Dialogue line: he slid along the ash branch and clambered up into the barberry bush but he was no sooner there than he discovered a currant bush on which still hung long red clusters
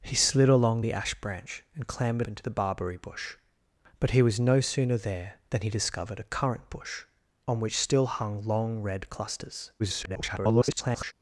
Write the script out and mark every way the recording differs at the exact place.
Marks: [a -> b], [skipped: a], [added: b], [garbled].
he slid along the ash branch and clambered [skipped: up] into the barberry bush but he was no sooner there than he discovered a currant bush on which still hung long red clusters [garbled]